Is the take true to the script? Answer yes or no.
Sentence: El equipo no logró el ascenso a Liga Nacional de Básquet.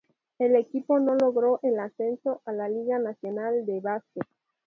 no